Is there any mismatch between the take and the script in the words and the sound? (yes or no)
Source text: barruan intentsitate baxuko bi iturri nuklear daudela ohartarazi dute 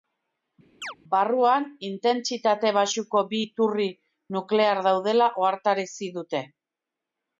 yes